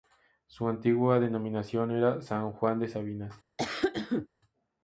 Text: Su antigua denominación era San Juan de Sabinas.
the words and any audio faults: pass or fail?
fail